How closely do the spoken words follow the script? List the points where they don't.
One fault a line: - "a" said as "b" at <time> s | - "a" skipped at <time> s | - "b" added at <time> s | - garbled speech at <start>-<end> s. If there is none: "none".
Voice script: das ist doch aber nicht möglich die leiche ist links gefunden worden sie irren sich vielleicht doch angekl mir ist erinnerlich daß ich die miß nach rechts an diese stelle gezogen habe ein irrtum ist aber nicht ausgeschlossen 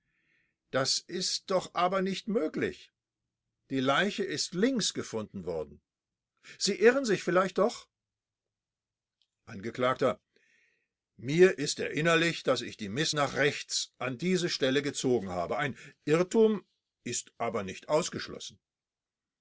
none